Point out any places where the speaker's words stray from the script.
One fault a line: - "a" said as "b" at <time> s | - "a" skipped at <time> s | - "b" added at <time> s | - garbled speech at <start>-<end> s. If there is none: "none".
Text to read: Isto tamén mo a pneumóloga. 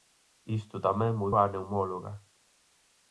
none